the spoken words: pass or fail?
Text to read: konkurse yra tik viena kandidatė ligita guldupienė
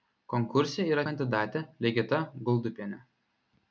fail